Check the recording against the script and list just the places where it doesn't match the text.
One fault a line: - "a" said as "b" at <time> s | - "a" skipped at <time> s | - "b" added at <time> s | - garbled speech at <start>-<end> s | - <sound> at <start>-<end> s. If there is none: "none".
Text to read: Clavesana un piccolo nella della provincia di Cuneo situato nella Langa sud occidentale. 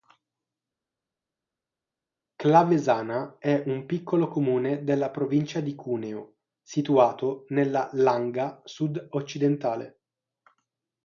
- "è" added at 3.4 s
- "nella" said as "comune" at 4.3 s